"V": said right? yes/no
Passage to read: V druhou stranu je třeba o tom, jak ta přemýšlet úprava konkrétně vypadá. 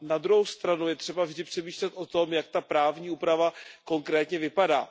no